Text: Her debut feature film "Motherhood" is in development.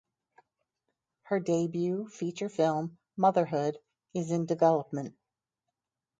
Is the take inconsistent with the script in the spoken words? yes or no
no